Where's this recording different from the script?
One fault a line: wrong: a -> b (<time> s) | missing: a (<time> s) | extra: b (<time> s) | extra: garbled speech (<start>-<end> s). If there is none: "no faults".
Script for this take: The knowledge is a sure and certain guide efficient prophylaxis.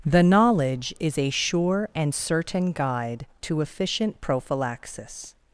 extra: to (3.4 s)